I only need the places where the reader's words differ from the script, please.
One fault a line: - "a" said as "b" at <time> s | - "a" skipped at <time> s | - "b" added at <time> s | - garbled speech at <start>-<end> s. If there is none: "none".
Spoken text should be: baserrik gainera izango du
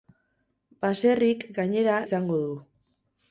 none